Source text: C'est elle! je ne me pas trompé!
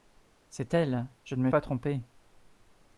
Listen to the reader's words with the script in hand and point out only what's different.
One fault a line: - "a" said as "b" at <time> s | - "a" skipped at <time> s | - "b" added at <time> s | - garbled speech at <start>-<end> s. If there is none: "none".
none